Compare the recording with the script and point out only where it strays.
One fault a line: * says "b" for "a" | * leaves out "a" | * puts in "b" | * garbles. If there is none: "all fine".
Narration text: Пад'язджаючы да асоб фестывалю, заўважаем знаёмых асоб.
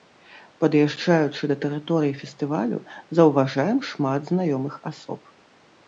* says "тэрыторыі" for "асоб"
* puts in "шмат"